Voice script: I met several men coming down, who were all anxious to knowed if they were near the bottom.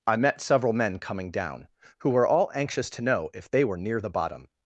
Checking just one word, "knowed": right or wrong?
wrong